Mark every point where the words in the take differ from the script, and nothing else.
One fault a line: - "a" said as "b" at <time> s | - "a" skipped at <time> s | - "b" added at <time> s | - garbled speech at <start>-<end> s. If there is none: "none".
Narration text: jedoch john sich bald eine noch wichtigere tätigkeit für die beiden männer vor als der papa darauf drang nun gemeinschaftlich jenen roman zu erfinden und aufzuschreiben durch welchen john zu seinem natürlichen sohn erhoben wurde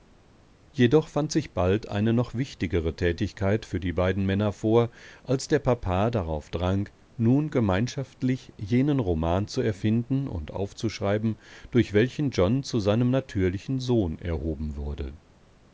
- "john" said as "fand" at 1.1 s